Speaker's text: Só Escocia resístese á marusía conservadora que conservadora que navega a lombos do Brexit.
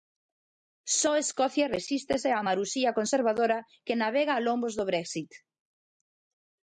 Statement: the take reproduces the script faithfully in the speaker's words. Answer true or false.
false